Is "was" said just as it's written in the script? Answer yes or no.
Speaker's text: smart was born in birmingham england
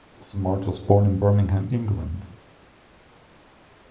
yes